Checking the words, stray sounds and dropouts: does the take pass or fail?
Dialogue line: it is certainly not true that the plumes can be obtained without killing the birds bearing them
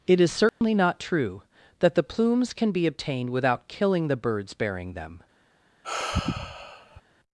fail